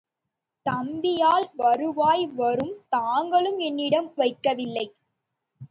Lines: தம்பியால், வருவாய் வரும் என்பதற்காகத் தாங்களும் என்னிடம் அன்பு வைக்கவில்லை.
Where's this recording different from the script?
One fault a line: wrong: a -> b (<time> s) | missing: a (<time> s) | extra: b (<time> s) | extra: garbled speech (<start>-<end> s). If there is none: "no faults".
missing: என்பதற்காகத் (2.7 s)
missing: அன்பு (4.1 s)